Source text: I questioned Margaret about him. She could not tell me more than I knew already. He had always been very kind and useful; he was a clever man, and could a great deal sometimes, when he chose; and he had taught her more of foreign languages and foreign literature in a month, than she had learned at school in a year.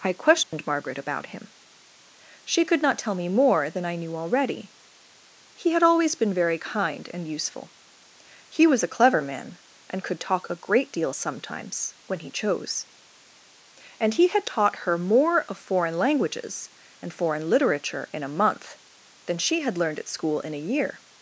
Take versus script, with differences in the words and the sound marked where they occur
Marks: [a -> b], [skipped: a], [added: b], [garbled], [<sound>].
I questioned [dropout] Margaret about him. She could not tell me more than I knew already. He had always been very kind and useful; he was a clever man, and could [added: talk] a great deal sometimes, when he chose; and he had taught her more of foreign languages and foreign literature in a month, than she had learned at school in a year.